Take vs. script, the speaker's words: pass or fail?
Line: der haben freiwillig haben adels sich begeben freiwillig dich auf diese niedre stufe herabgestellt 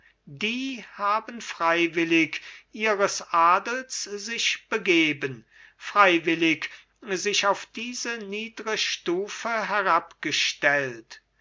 fail